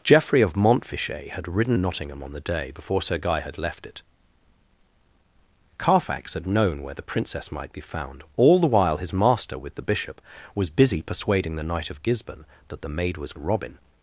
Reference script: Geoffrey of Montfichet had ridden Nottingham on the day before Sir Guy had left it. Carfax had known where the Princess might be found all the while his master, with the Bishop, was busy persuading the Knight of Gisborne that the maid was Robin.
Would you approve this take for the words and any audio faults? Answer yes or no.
yes